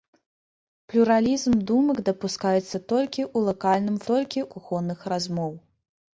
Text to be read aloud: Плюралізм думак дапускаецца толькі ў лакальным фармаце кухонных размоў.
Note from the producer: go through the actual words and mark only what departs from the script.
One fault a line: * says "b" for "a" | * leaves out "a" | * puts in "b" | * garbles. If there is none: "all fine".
* says "толькі" for "фармаце"